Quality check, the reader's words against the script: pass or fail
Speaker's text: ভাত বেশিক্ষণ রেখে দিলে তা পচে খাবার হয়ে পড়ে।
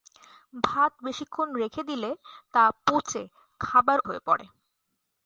pass